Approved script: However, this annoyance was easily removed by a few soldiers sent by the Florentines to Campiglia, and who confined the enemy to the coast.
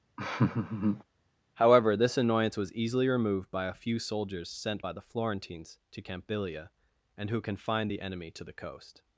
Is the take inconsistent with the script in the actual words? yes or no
no